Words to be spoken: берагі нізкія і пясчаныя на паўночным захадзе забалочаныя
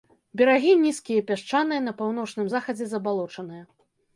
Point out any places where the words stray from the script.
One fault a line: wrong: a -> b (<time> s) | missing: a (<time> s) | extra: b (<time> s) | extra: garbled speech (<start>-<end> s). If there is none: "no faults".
no faults